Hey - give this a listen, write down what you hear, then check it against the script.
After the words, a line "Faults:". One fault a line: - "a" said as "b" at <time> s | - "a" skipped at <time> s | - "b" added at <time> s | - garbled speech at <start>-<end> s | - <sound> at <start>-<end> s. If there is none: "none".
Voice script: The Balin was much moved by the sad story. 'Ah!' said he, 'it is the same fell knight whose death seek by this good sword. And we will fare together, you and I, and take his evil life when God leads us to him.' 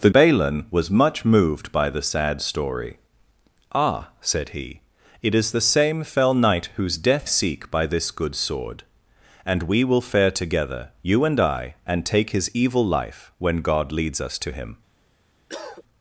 The Balin was much moved by the sad story. 'Ah!' said he, 'it is the same fell knight whose death seek by this good sword. And we will fare together, you and I, and take his evil life when God leads us to him.'
Faults:
- cough at 15.5-15.8 s